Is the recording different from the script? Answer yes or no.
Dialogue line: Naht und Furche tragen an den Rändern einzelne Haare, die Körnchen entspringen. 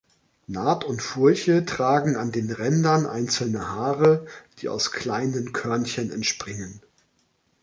yes